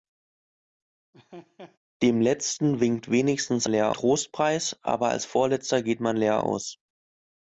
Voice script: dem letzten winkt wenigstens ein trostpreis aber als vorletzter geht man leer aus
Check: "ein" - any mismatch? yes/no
yes